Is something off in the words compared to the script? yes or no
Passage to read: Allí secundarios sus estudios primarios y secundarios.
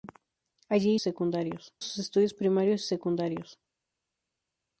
no